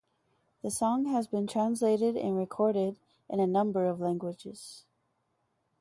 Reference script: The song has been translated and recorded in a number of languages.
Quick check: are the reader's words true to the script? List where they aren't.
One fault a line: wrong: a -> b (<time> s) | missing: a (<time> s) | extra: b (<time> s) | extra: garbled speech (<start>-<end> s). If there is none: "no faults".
no faults